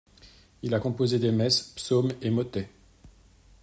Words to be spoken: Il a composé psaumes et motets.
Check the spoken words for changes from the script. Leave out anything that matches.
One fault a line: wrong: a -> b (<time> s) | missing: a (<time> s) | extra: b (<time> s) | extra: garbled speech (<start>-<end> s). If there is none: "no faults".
extra: des messes (1.2 s)